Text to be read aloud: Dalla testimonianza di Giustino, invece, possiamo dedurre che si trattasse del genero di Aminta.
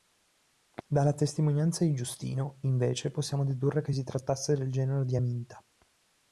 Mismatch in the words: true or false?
false